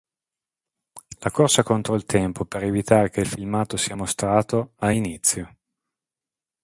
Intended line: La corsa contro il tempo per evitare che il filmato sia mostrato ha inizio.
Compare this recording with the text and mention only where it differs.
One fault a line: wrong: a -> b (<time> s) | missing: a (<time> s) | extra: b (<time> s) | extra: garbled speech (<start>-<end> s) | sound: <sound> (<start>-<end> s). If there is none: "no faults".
no faults